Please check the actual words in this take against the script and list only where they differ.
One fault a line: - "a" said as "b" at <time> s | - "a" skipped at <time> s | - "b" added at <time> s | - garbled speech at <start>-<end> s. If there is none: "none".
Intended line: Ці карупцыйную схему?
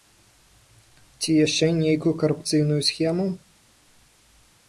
- "яшчэ нейкую" added at 1.4 s